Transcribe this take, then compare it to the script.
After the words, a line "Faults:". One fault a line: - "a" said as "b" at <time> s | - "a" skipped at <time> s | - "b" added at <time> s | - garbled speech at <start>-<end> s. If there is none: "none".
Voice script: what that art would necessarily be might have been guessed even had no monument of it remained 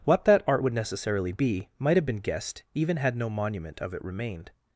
what that art would necessarily be might have been guessed even had no monument of it remained
Faults:
none